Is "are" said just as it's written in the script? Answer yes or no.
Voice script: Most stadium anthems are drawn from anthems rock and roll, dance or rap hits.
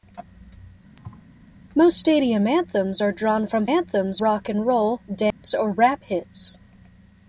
yes